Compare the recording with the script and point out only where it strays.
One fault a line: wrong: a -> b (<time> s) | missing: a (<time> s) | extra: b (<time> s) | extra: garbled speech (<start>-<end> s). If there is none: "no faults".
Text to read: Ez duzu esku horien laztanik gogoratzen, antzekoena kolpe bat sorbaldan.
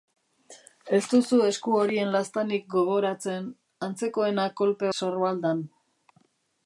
missing: bat (4.9 s)